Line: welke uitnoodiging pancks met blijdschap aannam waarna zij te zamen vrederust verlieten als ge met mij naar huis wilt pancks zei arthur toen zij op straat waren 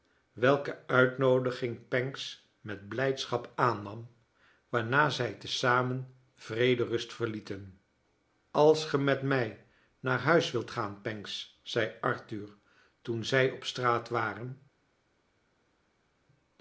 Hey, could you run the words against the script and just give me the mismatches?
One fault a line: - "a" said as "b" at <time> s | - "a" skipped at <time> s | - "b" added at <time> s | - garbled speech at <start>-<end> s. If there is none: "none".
- "gaan" added at 10.7 s